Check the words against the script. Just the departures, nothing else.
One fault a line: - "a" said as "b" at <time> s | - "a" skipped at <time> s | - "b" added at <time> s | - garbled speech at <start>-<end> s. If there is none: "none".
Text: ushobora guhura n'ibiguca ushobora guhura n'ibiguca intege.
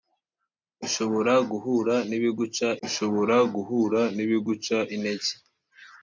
none